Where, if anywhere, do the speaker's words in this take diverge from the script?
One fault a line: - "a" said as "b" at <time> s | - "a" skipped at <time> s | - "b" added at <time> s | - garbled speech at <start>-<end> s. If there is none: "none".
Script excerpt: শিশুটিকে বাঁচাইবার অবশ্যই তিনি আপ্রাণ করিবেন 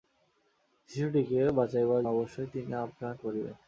none